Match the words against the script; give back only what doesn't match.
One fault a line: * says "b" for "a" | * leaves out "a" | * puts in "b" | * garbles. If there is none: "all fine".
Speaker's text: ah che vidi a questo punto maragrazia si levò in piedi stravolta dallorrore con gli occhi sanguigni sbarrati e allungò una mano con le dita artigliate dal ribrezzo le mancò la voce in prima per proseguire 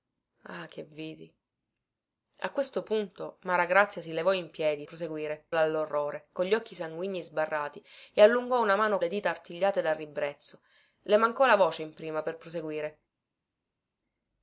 * says "proseguire" for "stravolta"
* leaves out "con"